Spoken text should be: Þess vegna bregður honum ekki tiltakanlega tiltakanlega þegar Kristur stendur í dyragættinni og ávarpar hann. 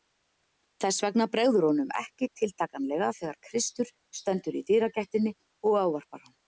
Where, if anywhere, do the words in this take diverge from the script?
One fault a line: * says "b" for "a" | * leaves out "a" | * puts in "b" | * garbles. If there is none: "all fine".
* leaves out "tiltakanlega"